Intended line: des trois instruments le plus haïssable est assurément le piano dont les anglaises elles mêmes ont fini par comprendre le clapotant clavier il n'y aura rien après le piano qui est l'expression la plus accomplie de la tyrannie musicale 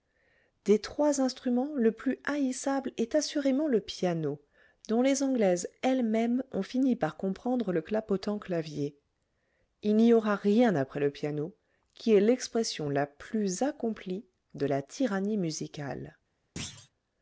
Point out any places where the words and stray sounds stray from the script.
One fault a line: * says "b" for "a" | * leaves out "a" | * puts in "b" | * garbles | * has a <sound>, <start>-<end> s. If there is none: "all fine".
* has a thud, 16.6-16.9 s